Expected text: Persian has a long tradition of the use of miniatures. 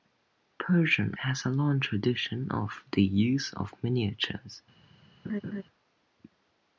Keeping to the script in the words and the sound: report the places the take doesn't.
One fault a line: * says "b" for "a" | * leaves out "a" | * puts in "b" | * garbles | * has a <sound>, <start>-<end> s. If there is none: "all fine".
* has a laugh, 5.2-5.6 s